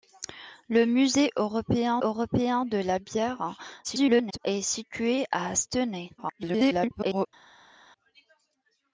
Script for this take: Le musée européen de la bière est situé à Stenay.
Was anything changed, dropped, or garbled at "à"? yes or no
no